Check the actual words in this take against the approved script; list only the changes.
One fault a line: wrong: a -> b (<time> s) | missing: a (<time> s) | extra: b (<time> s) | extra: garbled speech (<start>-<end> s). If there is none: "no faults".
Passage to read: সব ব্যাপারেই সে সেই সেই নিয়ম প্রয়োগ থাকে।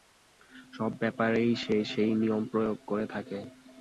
missing: সেই (2.1 s)
extra: করে (2.9 s)